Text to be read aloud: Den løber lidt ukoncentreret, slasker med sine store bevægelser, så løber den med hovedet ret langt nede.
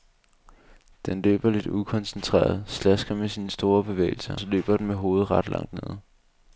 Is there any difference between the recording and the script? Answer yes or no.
no